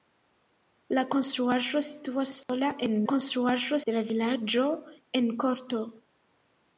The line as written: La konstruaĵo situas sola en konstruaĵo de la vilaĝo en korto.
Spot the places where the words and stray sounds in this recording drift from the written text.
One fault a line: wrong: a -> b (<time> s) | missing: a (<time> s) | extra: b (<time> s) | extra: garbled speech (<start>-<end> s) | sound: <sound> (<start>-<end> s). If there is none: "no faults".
sound: dropout (2.4-2.5 s)